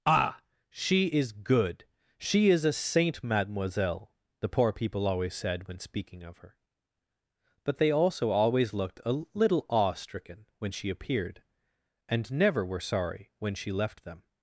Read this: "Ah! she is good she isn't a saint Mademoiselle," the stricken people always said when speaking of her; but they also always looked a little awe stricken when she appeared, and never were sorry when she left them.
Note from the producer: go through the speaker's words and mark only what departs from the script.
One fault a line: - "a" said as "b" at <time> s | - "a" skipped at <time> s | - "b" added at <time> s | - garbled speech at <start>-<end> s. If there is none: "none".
- "isn't" said as "is" at 2.5 s
- "stricken" said as "poor" at 4.5 s